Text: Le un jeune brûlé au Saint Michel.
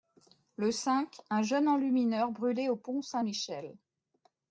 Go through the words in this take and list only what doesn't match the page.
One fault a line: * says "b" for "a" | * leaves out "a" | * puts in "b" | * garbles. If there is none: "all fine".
* puts in "cinq"
* puts in "enlumineur"
* puts in "pont"